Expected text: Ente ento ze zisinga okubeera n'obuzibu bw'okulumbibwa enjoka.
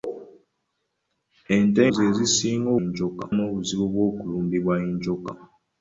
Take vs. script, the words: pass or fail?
fail